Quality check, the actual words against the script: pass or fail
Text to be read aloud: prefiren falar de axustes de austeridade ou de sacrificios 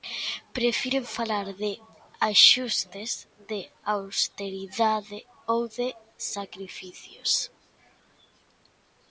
pass